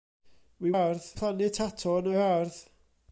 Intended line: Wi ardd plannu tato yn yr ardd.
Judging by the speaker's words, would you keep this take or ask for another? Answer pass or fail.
pass